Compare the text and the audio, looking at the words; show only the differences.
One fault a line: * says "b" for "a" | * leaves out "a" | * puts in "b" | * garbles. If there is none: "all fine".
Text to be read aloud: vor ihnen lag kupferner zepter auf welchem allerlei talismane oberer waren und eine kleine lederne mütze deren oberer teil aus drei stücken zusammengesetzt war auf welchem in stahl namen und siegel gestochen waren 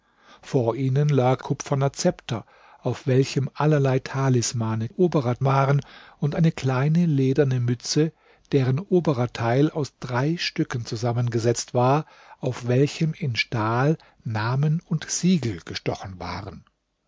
all fine